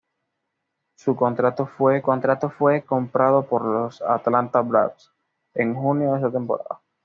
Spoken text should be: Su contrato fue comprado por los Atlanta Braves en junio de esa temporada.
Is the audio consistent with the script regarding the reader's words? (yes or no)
no